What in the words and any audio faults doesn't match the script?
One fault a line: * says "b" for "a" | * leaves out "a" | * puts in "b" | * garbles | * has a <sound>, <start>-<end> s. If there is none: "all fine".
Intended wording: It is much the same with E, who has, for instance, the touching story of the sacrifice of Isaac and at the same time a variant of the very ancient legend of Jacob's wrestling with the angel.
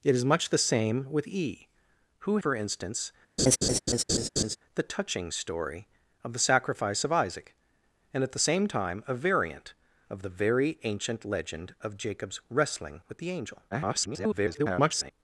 * leaves out "has"
* has a laugh, 3.4-4.6 s
* garbles